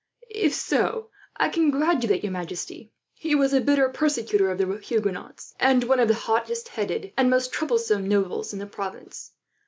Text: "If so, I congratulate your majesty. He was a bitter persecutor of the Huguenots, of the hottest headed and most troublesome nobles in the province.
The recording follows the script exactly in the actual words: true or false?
false